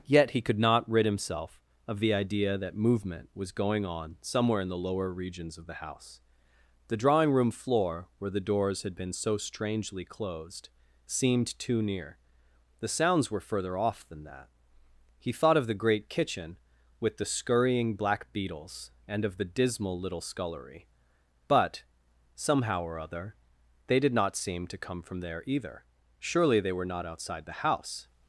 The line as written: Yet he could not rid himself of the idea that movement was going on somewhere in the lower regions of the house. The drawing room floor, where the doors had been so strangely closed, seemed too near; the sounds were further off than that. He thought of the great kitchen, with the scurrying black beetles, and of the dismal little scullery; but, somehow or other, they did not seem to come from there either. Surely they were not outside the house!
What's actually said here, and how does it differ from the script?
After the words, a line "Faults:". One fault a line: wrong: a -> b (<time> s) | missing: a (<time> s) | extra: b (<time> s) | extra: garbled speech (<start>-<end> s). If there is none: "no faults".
Yet he could not rid himself of the idea that movement was going on somewhere in the lower regions of the house. The drawing room floor, where the doors had been so strangely closed, seemed too near; the sounds were further off than that. He thought of the great kitchen, with the scurrying black beetles, and of the dismal little scullery; but, somehow or other, they did not seem to come from there either. Surely they were not outside the house!
Faults:
no faults